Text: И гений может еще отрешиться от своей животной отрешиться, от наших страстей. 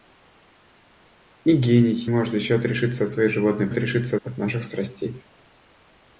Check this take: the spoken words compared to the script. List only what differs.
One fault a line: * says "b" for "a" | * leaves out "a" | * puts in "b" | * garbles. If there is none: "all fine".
all fine